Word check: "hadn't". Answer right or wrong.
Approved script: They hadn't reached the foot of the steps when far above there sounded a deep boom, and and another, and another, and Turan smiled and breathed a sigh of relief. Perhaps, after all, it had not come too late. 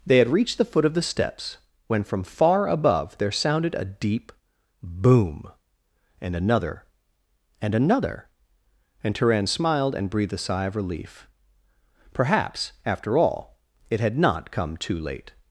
wrong